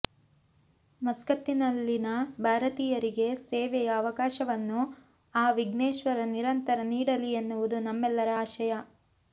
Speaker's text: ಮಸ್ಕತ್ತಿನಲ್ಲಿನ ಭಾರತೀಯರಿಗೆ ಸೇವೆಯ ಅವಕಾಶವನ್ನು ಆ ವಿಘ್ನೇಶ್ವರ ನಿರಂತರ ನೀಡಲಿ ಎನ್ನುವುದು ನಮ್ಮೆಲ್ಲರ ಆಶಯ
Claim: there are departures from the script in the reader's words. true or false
false